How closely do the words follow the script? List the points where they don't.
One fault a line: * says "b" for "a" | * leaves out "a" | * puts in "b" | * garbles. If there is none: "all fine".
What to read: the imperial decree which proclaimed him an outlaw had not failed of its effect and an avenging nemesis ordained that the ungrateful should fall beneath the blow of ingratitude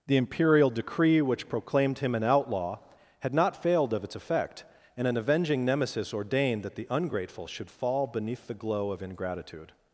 * says "glow" for "blow"